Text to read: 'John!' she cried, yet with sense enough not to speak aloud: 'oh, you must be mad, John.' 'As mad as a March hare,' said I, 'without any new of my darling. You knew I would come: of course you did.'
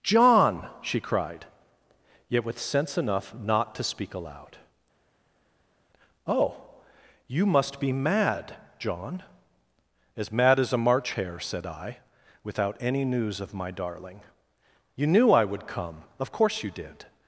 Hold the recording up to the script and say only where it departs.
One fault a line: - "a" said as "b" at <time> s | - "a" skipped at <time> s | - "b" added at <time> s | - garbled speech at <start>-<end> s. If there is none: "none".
- "new" said as "news" at 13.0 s